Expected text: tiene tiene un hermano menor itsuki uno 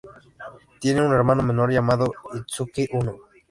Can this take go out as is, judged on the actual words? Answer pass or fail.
fail